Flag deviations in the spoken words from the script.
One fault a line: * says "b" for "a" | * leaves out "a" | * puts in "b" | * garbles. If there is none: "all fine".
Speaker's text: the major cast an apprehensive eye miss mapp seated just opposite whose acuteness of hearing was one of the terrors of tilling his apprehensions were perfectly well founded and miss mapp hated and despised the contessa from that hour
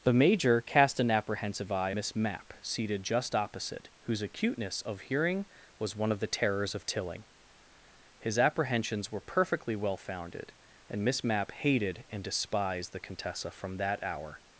all fine